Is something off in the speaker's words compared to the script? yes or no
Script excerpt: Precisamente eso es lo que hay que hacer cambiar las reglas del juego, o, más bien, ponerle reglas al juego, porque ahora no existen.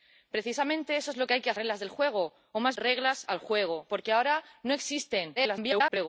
yes